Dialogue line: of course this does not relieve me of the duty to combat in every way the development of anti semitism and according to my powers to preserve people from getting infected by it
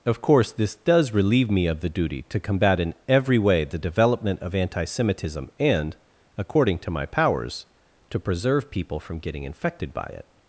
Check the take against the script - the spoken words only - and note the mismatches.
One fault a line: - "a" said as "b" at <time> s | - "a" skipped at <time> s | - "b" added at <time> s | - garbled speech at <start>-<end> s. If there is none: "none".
- "not" skipped at 1.1 s